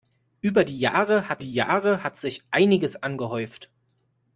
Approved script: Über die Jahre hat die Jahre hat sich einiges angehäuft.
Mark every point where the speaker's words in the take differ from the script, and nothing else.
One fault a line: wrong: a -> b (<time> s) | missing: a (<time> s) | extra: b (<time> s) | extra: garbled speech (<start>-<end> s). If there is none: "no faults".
no faults